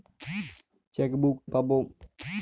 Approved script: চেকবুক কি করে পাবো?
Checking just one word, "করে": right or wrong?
wrong